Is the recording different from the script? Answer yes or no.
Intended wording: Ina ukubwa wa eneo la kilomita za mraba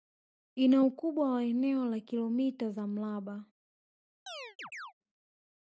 no